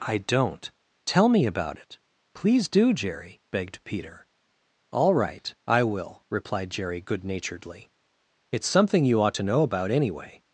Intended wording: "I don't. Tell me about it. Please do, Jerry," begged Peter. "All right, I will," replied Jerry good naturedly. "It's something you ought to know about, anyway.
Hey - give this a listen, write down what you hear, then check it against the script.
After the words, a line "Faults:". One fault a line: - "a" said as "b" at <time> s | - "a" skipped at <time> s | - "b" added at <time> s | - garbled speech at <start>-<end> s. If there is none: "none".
"I don't. Tell me about it. Please do, Jerry," begged Peter. "All right, I will," replied Jerry good naturedly. "It's something you ought to know about, anyway.
Faults:
none